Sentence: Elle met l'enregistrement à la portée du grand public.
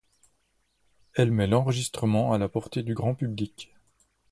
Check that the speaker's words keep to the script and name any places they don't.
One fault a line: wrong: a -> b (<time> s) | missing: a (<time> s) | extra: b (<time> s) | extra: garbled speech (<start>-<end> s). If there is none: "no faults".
no faults